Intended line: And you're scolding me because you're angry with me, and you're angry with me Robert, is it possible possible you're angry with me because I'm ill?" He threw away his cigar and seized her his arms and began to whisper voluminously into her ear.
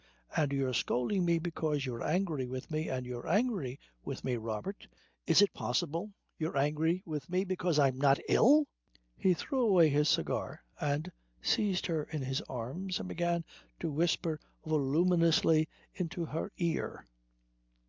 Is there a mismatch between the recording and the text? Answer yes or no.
yes